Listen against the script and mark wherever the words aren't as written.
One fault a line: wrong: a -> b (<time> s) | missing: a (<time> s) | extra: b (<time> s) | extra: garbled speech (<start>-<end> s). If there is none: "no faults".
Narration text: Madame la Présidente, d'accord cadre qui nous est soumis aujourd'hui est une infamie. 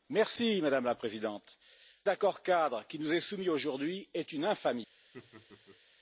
no faults